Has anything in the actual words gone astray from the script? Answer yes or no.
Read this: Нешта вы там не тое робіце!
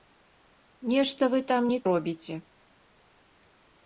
yes